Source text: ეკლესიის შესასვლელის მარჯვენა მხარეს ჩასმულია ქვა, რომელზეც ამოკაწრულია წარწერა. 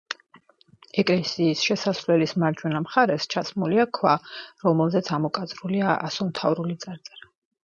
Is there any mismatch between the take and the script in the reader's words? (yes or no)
yes